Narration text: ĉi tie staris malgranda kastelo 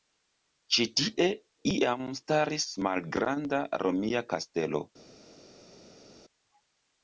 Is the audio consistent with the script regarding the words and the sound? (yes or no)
no